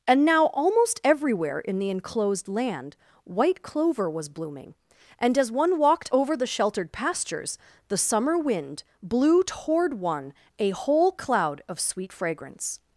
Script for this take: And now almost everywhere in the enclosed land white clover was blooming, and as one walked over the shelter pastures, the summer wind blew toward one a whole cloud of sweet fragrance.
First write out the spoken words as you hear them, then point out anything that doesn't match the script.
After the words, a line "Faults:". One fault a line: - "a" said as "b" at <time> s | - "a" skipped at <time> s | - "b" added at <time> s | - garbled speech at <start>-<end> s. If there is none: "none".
And now almost everywhere in the enclosed land white clover was blooming, and as one walked over the sheltered pastures, the summer wind blew toward one a whole cloud of sweet fragrance.
Faults:
- "shelter" said as "sheltered" at 6.5 s